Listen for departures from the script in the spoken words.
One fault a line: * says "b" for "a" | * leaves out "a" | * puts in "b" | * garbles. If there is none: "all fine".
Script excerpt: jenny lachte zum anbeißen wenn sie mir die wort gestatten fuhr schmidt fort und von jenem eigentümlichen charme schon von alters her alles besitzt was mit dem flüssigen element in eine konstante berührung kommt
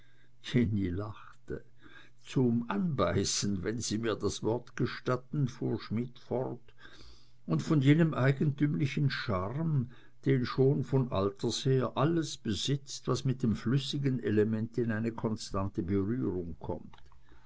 * says "das" for "die"
* puts in "den"